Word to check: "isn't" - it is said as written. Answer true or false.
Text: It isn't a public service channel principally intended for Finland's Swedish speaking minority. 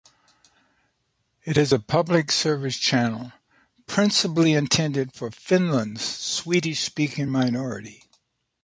false